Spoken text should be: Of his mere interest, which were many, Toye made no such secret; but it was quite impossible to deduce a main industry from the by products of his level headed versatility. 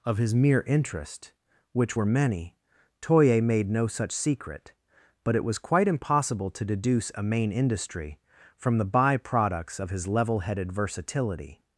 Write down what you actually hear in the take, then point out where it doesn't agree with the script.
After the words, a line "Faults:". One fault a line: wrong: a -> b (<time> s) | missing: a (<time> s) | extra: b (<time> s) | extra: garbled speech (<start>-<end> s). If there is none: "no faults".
Of his mere interest, which were many, Toye made no such secret; but it was quite impossible to deduce a main industry from the by products of his level headed versatility.
Faults:
no faults